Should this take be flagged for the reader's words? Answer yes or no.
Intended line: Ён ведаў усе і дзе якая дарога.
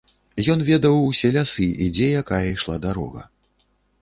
yes